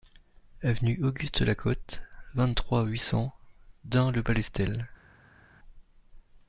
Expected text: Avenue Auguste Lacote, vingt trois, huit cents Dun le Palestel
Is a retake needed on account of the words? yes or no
no